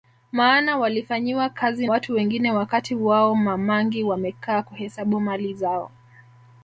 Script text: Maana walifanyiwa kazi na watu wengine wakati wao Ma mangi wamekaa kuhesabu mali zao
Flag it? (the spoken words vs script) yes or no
yes